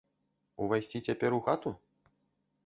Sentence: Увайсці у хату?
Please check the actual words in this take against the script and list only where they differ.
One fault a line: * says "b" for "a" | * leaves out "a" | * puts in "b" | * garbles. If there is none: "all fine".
* puts in "цяпер"